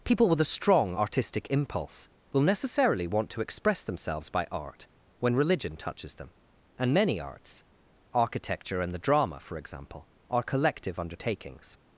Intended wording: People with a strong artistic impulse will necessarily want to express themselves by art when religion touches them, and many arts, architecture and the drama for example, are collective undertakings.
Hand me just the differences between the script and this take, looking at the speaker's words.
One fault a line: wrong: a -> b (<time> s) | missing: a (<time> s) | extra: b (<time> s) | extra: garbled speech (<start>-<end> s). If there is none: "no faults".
no faults